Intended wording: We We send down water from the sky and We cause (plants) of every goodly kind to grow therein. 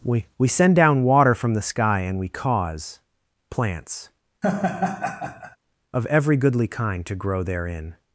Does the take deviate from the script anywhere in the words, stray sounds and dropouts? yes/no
yes